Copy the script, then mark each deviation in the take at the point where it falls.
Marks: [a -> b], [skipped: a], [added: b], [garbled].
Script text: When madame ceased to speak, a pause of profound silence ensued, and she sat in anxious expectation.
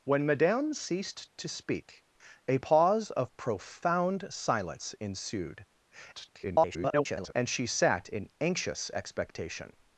When madame ceased to speak, a pause of profound silence ensued, [garbled] and she sat in anxious expectation.